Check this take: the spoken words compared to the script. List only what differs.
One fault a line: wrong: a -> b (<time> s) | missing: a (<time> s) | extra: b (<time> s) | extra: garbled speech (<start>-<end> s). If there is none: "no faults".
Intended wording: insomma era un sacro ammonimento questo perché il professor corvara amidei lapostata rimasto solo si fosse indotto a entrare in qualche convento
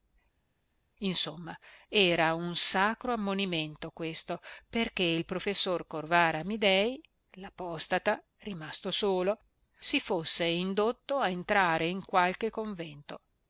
no faults